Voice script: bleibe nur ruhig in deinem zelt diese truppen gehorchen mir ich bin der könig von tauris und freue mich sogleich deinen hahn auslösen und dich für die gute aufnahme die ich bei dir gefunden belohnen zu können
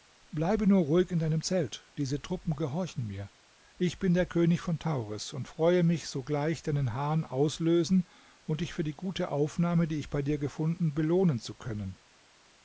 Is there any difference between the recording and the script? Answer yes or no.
no